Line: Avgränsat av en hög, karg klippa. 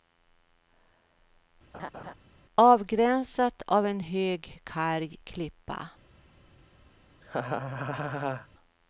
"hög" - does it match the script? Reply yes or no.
yes